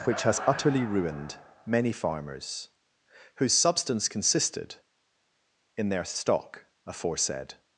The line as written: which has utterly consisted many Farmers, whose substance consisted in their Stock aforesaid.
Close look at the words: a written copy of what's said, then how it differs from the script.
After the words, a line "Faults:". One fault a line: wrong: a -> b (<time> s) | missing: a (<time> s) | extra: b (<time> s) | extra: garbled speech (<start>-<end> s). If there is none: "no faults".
which has utterly ruined many Farmers, whose substance consisted in their Stock aforesaid.
Faults:
wrong: consisted -> ruined (0.8 s)